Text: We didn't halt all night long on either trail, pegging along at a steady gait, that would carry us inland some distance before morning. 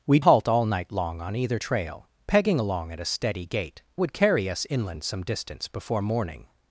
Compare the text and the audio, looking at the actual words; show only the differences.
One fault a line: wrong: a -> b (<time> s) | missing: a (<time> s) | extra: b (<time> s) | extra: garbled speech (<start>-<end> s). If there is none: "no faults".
missing: didn't (0.2 s)
missing: that (3.8 s)